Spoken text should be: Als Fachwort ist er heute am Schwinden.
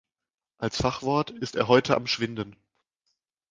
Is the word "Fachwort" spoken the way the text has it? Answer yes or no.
yes